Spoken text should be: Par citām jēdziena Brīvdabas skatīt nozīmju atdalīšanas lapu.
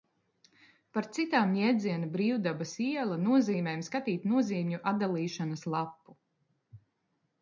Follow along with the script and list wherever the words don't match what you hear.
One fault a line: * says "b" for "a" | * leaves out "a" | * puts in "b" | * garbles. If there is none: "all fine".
* puts in "iela nozīmēm"